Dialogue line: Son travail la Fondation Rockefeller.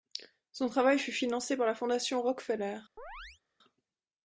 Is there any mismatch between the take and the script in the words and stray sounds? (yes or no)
yes